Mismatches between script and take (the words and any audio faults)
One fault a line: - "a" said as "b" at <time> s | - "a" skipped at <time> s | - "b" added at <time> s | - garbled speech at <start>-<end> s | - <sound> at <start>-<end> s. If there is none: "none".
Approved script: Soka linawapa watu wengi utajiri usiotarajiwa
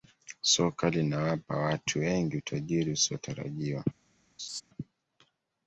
- laugh at 4.4-4.6 s